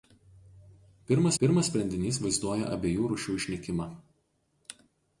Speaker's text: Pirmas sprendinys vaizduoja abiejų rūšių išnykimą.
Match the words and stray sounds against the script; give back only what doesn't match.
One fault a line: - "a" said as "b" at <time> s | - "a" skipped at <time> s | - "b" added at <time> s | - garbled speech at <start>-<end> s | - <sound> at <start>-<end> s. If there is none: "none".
- "pirmas" added at 1.4 s